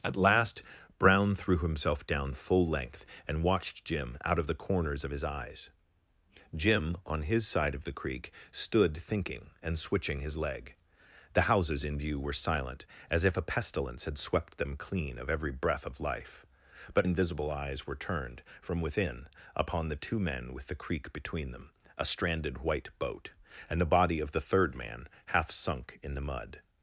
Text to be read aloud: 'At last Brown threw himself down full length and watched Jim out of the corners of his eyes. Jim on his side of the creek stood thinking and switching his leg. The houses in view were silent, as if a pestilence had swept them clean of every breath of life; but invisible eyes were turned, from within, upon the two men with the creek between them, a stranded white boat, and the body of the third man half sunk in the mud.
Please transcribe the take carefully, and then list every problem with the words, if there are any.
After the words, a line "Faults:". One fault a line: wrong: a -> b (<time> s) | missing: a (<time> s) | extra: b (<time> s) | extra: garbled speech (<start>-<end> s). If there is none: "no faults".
'At last Brown threw himself down full length and watched Jim out of the corners of his eyes. Jim on his side of the creek stood thinking and switching his leg. The houses in view were silent, as if a pestilence had swept them clean of every breath of life; but invisible eyes were turned, from within, upon the two men with the creek between them, a stranded white boat, and the body of the third man half sunk in the mud.
Faults:
no faults